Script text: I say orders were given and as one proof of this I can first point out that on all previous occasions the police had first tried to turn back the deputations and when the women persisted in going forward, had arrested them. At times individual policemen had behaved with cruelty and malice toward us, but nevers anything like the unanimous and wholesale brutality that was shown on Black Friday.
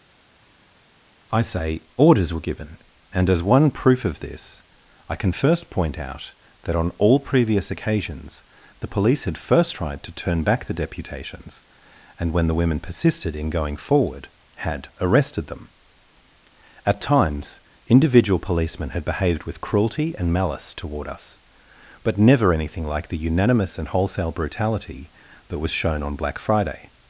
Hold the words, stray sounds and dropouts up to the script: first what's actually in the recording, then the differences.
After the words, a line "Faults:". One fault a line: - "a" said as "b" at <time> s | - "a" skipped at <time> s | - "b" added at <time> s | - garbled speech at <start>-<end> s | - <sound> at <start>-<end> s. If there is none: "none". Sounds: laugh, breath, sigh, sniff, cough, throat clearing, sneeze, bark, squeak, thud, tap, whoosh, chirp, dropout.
I say orders were given and as one proof of this I can first point out that on all previous occasions the police had first tried to turn back the deputations and when the women persisted in going forward, had arrested them. At times individual policemen had behaved with cruelty and malice toward us, but never anything like the unanimous and wholesale brutality that was shown on Black Friday.
Faults:
- "nevers" said as "never" at 22.2 s